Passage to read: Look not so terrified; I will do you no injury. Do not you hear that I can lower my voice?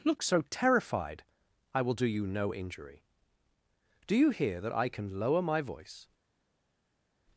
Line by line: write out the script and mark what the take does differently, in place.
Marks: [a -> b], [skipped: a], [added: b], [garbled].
Look [skipped: not] so terrified; I will do you no injury. Do [skipped: not] you hear that I can lower my voice?